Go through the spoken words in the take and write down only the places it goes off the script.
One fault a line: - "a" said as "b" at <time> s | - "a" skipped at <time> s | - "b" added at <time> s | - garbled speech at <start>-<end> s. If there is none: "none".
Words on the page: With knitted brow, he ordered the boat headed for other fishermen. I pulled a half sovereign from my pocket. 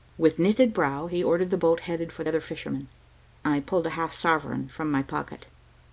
none